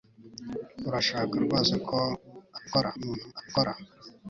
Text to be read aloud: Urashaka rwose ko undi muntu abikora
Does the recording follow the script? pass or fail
fail